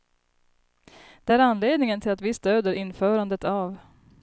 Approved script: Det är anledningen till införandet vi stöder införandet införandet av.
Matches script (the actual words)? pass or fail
fail